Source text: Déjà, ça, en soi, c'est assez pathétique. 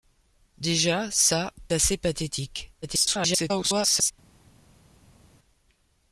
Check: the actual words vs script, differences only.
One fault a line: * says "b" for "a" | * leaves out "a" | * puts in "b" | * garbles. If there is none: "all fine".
* leaves out "en soi c'est"
* garbles